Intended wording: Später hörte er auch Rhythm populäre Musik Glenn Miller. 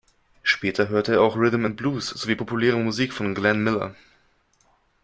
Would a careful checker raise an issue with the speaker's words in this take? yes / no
yes